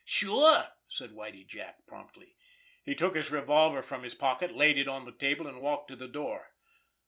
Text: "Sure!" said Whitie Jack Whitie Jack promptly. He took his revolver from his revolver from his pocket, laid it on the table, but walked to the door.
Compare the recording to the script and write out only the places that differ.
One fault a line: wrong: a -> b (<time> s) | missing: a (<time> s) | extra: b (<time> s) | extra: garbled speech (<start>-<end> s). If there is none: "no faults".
missing: Whitie Jack (1.9 s)
missing: revolver from his (4.2 s)
wrong: but -> and (5.4 s)